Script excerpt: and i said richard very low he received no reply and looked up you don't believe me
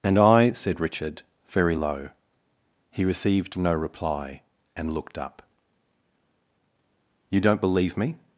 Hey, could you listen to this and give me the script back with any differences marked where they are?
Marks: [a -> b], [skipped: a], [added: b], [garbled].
and i said richard very low he received no reply and looked up you don't believe me